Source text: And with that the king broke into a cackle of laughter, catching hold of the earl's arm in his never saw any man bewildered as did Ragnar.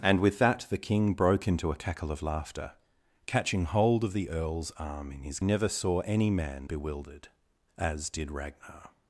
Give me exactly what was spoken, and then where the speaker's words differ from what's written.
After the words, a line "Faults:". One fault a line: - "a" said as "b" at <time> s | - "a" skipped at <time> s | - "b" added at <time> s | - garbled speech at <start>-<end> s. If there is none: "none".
And with that the king broke into a cackle of laughter, catching hold of the earl's arm in his never saw any man bewildered as did Ragnar.
Faults:
none